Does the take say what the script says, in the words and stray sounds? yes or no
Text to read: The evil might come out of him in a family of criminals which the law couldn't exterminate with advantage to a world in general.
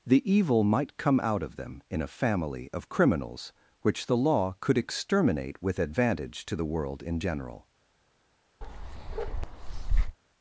no